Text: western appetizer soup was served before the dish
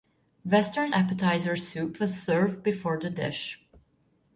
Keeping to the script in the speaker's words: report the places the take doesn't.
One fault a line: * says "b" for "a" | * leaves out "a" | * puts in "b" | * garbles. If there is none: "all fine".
all fine